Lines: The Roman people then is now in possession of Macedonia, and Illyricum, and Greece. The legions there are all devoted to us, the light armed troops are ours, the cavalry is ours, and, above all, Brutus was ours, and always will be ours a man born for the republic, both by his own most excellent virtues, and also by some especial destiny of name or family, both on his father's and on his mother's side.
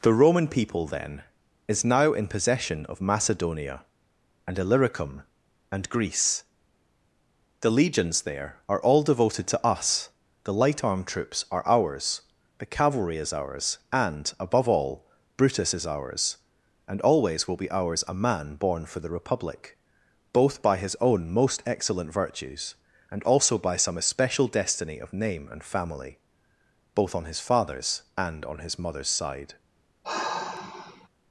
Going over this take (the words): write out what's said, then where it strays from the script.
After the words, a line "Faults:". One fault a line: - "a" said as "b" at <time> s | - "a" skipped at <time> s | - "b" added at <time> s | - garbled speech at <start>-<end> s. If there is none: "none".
The Roman people then is now in possession of Macedonia, and Illyricum, and Greece. The legions there are all devoted to us, the light armed troops are ours, the cavalry is ours, and, above all, Brutus is ours, and always will be ours a man born for the republic, both by his own most excellent virtues, and also by some especial destiny of name and family, both on his father's and on his mother's side.
Faults:
- "was" said as "is" at 15.7 s
- "or" said as "and" at 25.5 s